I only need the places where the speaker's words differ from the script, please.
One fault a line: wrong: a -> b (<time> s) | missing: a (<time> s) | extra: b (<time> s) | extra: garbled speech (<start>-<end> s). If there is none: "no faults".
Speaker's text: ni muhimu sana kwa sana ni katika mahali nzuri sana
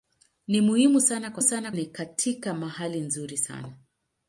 no faults